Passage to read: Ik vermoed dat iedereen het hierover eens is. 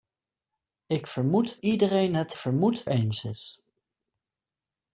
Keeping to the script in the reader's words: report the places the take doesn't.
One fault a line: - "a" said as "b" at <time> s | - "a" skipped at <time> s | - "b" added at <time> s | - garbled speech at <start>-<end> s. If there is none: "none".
- "dat" skipped at 1.6 s
- "hierover" said as "vermoed" at 2.4 s